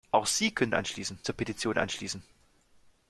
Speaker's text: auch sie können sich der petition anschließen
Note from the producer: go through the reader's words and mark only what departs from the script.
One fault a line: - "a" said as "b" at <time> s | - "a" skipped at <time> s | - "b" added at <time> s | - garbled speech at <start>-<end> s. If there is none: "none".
- "sich" said as "anschließen" at 0.7 s